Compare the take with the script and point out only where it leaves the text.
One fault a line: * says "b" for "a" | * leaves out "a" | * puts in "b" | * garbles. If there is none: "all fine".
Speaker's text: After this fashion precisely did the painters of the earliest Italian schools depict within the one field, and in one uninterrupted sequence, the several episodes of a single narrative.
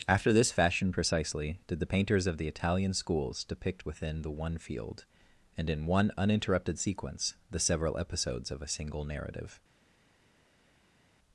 * leaves out "earliest"